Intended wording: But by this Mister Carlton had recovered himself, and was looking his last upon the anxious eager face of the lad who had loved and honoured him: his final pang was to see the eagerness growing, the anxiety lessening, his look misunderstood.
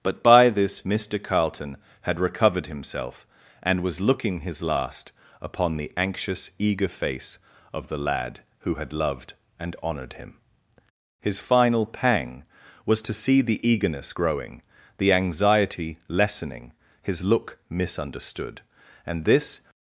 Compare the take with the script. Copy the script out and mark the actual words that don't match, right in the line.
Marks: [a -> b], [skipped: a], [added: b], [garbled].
But by this Mister Carlton had recovered himself, and was looking his last upon the anxious eager face of the lad who had loved and honoured him: his final pang was to see the eagerness growing, the anxiety lessening, his look misunderstood. [added: And this]